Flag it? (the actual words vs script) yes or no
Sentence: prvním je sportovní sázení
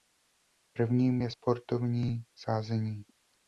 no